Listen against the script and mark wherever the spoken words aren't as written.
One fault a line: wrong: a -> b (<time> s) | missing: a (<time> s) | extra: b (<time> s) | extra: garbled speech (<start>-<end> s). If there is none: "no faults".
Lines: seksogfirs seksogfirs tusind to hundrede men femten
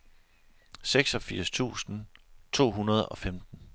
missing: seksogfirs (1.5 s)
wrong: men -> og (3.1 s)